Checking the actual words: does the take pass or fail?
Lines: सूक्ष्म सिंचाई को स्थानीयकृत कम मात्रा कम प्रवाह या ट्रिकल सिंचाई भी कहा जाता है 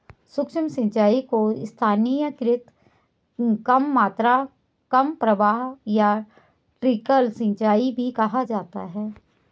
pass